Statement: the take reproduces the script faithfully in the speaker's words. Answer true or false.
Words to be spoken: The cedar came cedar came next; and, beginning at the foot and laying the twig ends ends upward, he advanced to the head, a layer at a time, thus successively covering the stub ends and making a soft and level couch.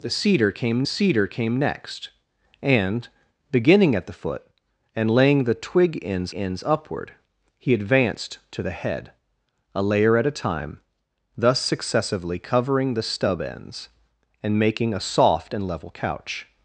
true